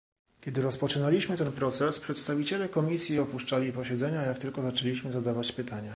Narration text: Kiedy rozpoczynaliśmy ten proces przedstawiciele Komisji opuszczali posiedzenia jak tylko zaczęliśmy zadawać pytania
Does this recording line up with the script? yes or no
yes